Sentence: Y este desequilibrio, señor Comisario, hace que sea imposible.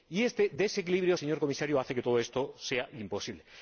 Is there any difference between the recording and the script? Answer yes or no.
yes